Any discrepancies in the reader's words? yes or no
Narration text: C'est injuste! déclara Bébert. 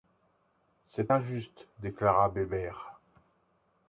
no